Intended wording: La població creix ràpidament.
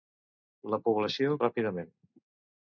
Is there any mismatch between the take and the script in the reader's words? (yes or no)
yes